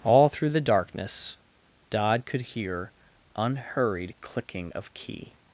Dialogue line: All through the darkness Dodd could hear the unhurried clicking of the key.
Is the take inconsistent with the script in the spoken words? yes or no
yes